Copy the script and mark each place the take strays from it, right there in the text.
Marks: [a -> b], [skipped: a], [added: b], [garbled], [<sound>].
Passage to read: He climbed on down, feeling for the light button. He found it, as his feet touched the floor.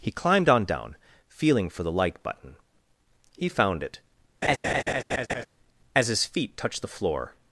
He climbed on down, feeling for the [light -> like] button. He found it, [laugh] as his feet touched the floor.